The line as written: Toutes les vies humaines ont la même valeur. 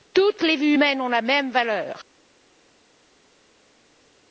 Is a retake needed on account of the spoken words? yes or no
no